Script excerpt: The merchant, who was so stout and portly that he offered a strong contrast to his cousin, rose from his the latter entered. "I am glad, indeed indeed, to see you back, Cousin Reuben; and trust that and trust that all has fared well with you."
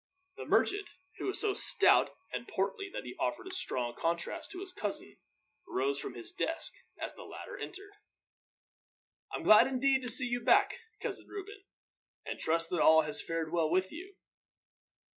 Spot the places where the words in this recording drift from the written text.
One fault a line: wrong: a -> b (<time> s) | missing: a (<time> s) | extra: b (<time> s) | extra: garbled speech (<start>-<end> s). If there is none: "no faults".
extra: desk as (6.3 s)
missing: indeed (10.0 s)
missing: and trust that (12.8 s)